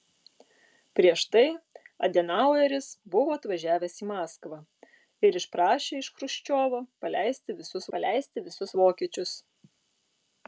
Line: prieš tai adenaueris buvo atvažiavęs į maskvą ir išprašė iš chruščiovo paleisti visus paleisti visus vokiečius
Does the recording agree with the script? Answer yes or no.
yes